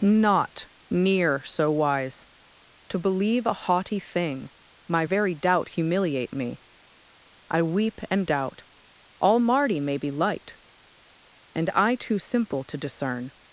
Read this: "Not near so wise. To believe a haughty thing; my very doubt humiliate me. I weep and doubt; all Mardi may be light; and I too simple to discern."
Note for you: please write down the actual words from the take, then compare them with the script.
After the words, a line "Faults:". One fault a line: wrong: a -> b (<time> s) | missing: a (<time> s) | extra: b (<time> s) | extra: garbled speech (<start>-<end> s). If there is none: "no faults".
"Not near so wise. To believe a haughty thing; my very doubt humiliate me. I weep and doubt; all Mardi may be light; and I too simple to discern."
Faults:
no faults